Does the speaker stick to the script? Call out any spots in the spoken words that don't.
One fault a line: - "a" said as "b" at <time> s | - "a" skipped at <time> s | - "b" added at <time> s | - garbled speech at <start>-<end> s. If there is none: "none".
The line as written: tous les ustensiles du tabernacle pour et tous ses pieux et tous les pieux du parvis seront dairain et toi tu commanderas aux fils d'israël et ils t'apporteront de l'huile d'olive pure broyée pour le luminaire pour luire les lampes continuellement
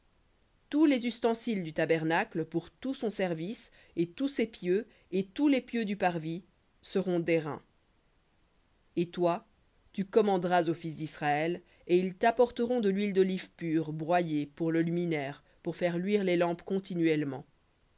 - "tout son service" added at 2.7 s
- "faire" added at 15.8 s